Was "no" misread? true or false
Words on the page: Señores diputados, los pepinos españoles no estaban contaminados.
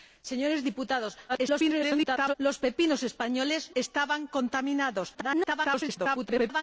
true